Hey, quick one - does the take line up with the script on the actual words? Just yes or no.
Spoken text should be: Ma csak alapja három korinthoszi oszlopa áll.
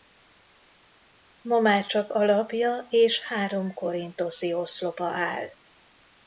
no